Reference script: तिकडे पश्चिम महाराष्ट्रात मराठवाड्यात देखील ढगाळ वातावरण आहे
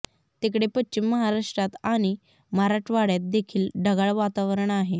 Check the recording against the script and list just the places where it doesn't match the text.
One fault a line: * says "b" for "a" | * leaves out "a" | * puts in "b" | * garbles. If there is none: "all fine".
* puts in "आणि"